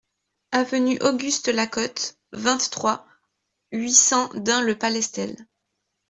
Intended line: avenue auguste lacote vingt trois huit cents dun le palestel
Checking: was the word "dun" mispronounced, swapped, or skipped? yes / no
no